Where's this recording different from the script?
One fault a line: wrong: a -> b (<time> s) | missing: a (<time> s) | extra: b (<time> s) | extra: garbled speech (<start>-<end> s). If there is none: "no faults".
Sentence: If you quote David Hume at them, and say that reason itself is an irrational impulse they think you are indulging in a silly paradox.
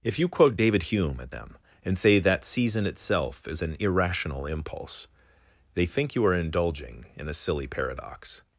wrong: reason -> season (2.5 s)